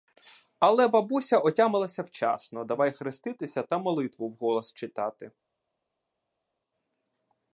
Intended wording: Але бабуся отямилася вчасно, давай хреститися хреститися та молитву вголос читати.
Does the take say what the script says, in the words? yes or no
no